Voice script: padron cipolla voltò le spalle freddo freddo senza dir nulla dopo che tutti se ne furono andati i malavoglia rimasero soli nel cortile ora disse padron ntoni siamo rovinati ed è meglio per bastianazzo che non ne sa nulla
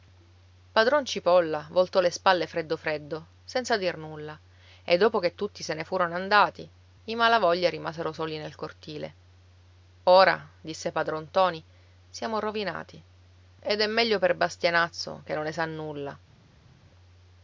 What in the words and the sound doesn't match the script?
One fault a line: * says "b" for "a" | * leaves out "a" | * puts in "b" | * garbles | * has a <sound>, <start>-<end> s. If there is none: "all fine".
* puts in "e"